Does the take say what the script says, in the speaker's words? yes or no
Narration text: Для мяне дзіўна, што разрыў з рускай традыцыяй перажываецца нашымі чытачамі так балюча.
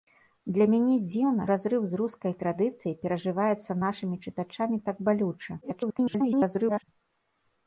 no